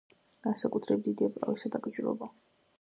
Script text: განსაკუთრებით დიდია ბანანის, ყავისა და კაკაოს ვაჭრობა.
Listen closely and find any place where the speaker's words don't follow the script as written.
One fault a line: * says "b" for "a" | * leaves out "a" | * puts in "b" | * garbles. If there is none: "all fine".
* leaves out "ბანანის"
* leaves out "კაკაოს"